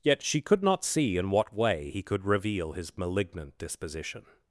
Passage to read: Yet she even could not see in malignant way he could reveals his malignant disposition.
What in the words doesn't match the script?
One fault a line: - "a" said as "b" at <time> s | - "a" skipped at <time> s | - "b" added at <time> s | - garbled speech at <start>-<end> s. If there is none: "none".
- "even" skipped at 0.4 s
- "malignant" said as "what" at 1.3 s
- "reveals" said as "reveal" at 2.2 s